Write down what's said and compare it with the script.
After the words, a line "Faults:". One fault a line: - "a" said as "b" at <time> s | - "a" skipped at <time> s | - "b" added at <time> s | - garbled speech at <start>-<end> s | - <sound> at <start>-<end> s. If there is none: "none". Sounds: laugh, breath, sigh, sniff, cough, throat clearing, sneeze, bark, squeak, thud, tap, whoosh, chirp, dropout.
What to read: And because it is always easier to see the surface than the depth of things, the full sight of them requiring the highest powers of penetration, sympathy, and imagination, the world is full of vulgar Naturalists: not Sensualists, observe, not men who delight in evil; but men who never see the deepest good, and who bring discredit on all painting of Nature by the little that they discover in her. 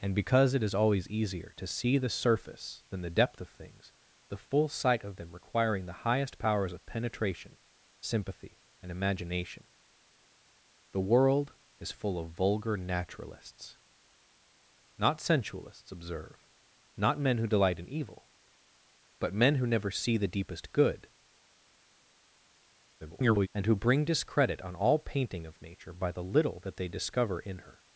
And because it is always easier to see the surface than the depth of things, the full sight of them requiring the highest powers of penetration, sympathy, and imagination, the world is full of vulgar Naturalists: not Sensualists, observe, not men who delight in evil; but men who never see the deepest good, [garbled] and who bring discredit on all painting of Nature by the little that they discover in her.
Faults:
- garbled speech at 23.0-23.5 s